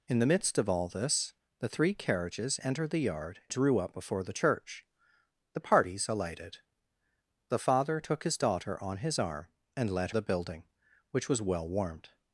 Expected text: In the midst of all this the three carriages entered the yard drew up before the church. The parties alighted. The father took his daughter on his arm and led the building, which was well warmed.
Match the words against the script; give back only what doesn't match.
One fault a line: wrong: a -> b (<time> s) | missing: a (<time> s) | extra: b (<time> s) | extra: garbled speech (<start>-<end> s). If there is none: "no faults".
no faults